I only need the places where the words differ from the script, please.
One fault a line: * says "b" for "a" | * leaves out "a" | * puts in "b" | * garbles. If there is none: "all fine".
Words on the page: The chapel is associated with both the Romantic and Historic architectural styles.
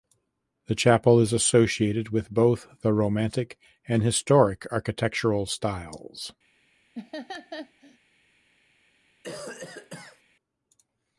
all fine